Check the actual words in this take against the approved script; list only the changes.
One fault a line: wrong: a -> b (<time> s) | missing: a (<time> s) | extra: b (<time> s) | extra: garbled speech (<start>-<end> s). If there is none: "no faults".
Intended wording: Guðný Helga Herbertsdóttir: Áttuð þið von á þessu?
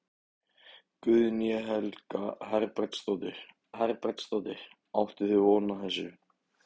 extra: Herbertsdóttir (3.8 s)